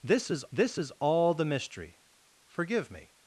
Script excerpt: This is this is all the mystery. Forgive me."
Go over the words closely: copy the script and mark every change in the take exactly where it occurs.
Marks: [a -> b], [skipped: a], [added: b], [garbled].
This is this is all the mystery. Forgive me."